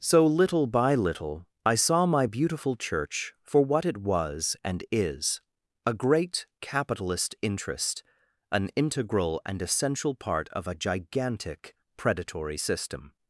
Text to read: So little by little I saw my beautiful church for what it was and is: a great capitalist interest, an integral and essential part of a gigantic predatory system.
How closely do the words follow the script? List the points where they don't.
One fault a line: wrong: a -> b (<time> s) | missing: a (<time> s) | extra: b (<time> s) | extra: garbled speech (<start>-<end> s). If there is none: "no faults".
no faults